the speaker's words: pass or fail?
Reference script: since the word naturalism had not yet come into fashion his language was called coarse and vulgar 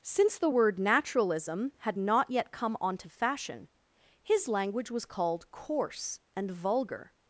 fail